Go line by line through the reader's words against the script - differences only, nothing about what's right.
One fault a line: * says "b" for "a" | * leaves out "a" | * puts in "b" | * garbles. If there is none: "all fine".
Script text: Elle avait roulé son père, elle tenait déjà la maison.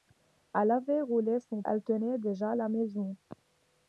* leaves out "père"